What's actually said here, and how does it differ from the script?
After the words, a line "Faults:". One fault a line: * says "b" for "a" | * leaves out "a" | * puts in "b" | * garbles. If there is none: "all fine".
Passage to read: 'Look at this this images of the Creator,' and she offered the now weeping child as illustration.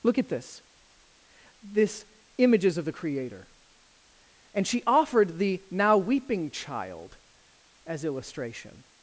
'Look at this this images of the Creator,' and she offered the now weeping child as illustration.
Faults:
all fine